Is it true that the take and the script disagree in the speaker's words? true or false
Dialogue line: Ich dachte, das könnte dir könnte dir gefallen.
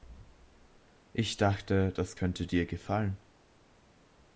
true